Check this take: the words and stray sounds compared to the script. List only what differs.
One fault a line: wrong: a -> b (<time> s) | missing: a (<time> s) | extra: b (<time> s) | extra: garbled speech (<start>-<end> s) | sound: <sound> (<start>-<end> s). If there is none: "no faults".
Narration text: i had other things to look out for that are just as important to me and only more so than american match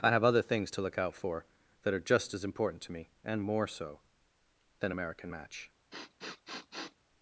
wrong: had -> have (0.1 s)
missing: only (3.4 s)
sound: sniff (5.9-7.0 s)